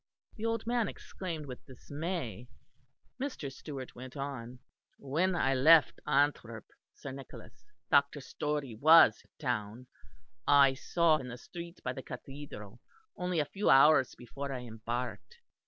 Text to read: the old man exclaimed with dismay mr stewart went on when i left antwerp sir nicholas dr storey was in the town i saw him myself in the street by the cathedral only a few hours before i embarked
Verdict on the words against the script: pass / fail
fail